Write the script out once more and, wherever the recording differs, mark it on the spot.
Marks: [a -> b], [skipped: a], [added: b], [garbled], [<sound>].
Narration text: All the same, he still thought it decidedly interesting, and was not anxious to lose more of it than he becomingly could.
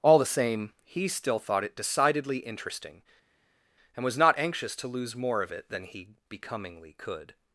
All the same, he still thought it decidedly interesting, and was not anxious to lose more of it than he becomingly could.